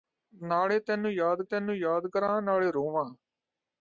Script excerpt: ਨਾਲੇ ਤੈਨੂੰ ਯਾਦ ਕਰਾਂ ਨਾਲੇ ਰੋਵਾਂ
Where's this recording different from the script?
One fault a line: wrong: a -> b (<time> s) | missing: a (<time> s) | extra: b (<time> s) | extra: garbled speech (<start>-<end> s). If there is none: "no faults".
extra: ਤੈਨੂੰ ਯਾਦ (1.4 s)